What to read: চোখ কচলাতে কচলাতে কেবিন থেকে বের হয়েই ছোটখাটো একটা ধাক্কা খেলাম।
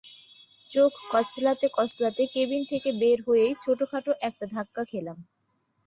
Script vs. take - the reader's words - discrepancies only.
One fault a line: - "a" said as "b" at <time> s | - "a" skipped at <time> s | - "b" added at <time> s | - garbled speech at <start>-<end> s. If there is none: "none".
none